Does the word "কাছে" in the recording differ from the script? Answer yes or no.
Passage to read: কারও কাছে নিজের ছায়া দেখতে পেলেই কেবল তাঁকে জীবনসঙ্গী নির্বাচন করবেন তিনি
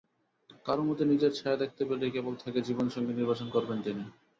yes